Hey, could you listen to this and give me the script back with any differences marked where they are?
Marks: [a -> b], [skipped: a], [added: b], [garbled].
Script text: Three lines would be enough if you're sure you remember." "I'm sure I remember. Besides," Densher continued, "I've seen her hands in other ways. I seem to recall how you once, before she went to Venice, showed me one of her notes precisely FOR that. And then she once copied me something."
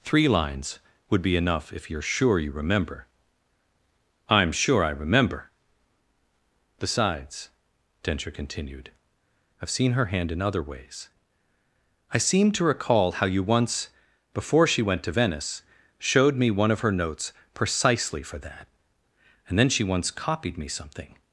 Three lines would be enough if you're sure you remember." "I'm sure I remember. Besides," Densher continued, "I've seen her [hands -> hand] in other ways. I seem to recall how you once, before she went to Venice, showed me one of her notes precisely FOR that. And then she once copied me something."